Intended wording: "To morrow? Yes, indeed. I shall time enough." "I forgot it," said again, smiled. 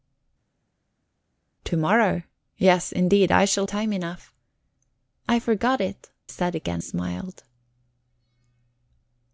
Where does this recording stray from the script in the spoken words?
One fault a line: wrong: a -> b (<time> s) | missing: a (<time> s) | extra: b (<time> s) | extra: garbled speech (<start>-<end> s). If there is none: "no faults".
no faults